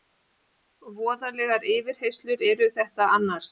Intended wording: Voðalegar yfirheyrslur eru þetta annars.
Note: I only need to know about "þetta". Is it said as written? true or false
true